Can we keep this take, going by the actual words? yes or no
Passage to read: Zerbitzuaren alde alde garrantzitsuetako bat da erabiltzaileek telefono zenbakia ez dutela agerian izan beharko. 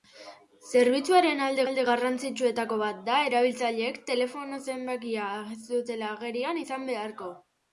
yes